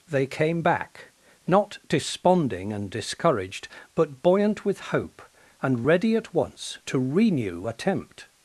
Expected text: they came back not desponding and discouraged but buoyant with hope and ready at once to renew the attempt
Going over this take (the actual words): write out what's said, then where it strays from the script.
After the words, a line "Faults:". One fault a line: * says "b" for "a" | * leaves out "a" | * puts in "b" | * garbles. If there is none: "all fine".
they came back not desponding and discouraged but buoyant with hope and ready at once to renew attempt
Faults:
* leaves out "the"